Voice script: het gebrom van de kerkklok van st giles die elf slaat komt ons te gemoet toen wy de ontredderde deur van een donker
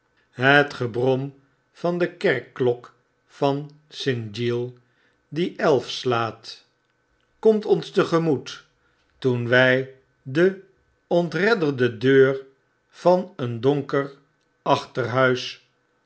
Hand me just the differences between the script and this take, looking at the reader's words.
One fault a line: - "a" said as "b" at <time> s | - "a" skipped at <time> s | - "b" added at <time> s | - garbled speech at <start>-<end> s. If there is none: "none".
none